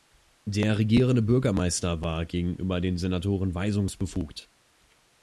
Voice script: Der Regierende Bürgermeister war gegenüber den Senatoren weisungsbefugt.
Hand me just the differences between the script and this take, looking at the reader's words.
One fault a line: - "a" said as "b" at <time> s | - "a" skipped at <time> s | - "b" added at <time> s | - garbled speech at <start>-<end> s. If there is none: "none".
none